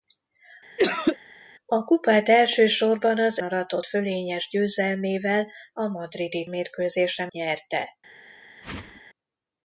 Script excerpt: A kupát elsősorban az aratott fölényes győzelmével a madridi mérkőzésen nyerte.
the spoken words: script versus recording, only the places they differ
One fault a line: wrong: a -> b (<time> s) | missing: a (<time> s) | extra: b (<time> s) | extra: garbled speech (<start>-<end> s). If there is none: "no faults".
no faults